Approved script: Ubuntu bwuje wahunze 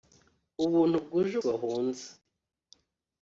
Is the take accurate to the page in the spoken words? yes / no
yes